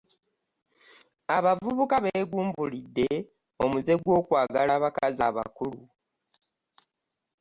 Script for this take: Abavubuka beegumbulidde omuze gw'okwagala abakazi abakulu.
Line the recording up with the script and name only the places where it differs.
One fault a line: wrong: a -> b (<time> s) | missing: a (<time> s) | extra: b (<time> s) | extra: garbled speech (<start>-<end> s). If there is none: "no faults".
no faults